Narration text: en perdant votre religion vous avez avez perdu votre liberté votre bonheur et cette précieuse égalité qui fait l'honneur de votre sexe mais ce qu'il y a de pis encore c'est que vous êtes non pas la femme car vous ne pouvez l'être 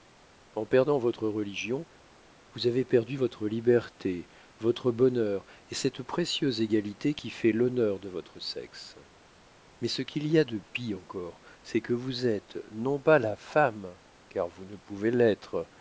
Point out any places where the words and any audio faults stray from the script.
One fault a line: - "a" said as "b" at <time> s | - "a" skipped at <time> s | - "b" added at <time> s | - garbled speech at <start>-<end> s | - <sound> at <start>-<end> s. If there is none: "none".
- "avez" skipped at 2.8 s